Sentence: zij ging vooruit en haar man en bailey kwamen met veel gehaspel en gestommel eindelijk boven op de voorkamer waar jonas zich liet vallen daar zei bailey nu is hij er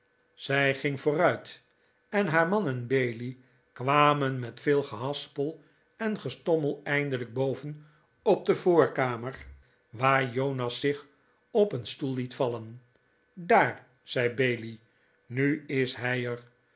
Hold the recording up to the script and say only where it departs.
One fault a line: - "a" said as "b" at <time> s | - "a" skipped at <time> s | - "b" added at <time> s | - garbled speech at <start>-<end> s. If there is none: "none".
- "op een stoel" added at 11.5 s